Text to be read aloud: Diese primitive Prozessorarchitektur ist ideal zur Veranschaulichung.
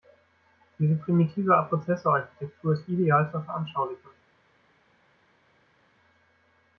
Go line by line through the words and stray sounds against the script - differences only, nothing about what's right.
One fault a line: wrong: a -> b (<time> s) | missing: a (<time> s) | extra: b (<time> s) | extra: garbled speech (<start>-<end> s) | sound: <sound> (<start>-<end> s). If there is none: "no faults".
no faults